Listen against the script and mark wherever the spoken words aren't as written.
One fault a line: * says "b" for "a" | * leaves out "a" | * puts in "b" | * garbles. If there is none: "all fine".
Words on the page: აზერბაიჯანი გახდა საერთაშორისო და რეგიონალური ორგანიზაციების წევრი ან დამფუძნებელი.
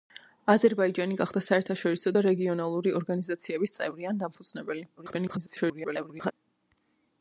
* garbles